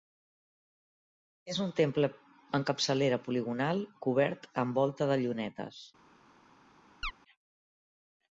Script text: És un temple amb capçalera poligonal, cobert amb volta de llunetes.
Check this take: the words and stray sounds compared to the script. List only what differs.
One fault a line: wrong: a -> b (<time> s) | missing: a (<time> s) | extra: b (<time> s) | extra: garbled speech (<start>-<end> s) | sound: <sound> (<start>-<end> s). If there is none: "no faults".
sound: chirp (7.0-7.1 s)